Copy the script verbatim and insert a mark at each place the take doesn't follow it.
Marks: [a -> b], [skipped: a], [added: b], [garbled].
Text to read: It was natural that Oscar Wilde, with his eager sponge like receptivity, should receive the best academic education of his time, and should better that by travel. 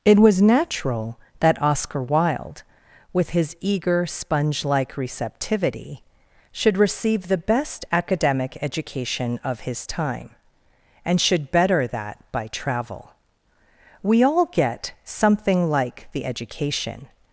It was natural that Oscar Wilde, with his eager sponge like receptivity, should receive the best academic education of his time, and should better that by travel. [added: We all get something like the education]